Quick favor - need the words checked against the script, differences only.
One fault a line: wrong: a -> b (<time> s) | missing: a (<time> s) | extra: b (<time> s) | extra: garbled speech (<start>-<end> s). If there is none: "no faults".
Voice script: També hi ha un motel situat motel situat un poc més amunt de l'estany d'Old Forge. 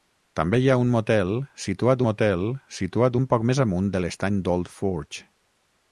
no faults